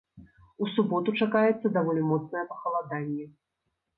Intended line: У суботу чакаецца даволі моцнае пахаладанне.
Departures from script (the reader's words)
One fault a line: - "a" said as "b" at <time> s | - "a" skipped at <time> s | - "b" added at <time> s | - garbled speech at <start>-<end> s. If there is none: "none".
none